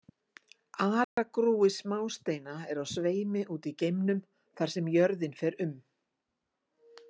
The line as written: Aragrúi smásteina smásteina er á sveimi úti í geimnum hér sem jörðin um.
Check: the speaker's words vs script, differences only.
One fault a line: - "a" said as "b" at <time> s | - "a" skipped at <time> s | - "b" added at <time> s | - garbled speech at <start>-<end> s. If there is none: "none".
- "smásteina" skipped at 2.5 s
- "hér" said as "þar" at 4.6 s
- "fer" added at 5.4 s